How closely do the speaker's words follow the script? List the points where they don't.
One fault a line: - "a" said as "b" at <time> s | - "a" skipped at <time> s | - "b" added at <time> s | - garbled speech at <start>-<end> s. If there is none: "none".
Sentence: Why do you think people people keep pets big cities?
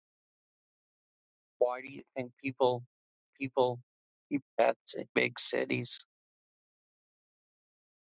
none